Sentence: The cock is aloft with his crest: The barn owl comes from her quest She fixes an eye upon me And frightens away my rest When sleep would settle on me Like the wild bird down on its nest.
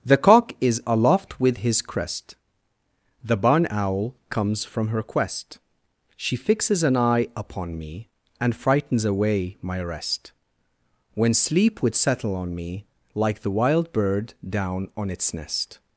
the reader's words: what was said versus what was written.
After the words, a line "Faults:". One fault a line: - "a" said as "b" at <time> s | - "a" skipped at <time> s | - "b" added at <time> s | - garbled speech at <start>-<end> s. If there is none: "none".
The cock is aloft with his crest: The barn owl comes from her quest She fixes an eye upon me And frightens away my rest When sleep would settle on me Like the wild bird down on its nest.
Faults:
none